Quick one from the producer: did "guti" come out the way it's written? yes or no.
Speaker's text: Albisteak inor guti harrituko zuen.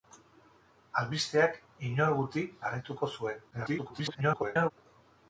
yes